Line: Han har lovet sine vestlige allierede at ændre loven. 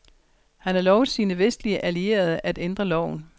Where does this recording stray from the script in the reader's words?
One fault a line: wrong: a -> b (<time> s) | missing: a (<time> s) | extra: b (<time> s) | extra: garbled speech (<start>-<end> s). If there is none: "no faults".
no faults